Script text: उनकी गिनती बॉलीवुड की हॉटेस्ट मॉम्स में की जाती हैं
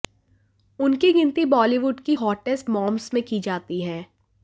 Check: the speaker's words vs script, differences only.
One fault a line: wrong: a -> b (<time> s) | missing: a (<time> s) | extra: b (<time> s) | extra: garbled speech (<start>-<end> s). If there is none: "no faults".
no faults